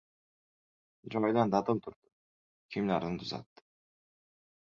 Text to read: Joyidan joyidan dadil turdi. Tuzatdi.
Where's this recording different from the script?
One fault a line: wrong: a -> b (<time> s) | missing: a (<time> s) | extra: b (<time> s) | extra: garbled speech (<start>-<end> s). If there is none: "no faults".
missing: joyidan (1.5 s)
extra: Kiyimlarini (2.7 s)